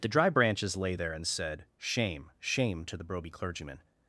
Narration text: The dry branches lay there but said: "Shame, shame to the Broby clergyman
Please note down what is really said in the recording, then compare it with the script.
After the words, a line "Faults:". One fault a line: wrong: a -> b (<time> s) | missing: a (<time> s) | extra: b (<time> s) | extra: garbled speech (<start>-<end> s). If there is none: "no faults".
The dry branches lay there and said: "Shame, shame to the Broby clergyman
Faults:
wrong: but -> and (1.1 s)